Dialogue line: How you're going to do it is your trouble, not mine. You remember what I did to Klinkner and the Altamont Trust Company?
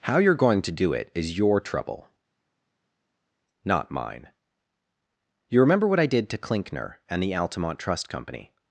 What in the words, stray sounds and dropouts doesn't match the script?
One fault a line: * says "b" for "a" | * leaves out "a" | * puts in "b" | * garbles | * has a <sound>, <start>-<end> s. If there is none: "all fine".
all fine